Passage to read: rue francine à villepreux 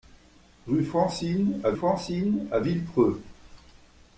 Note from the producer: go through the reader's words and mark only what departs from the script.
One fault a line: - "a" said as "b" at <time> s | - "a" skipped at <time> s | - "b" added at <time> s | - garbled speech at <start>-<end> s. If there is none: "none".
- "francine à" added at 1.7 s